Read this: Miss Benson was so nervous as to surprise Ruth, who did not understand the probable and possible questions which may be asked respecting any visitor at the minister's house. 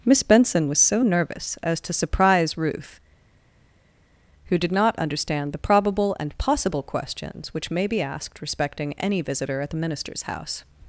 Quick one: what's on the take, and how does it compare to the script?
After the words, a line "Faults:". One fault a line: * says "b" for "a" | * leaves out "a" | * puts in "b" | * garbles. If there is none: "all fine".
Miss Benson was so nervous as to surprise Ruth, who did not understand the probable and possible questions which may be asked respecting any visitor at the minister's house.
Faults:
all fine